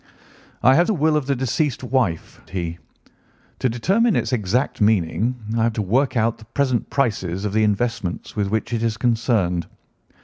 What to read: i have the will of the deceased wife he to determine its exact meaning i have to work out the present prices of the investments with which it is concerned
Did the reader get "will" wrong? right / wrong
right